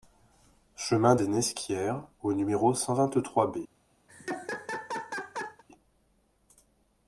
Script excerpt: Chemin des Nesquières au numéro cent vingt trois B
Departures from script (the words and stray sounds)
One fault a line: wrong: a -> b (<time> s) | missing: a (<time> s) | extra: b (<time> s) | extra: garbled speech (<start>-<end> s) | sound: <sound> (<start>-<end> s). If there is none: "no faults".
sound: laugh (4.1-5.6 s)